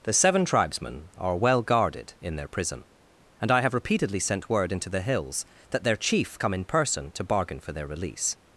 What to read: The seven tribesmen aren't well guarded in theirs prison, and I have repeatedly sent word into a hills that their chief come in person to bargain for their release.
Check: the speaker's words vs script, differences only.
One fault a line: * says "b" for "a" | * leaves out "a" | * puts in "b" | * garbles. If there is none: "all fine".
* says "are" for "aren't"
* says "their" for "theirs"
* says "the" for "a"